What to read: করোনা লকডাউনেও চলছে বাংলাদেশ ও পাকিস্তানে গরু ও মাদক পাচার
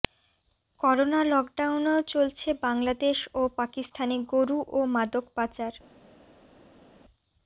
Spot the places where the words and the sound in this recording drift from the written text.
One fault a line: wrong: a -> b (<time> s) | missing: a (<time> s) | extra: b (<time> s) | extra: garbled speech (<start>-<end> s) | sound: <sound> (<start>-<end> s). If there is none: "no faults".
no faults